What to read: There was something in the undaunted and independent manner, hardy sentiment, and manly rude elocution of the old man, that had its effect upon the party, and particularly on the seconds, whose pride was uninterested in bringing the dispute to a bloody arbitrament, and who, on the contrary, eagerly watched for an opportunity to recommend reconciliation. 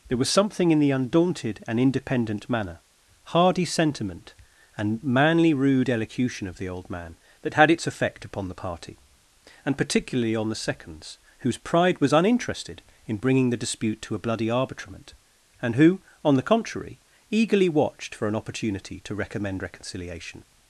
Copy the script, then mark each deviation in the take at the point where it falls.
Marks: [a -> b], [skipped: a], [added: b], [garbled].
There was something in the undaunted and independent manner, hardy sentiment, and manly rude elocution of the old man, that had its effect upon the party, and particularly on the seconds, whose pride was uninterested in bringing the dispute to a bloody arbitrament, and who, on the contrary, eagerly watched for an opportunity to recommend reconciliation.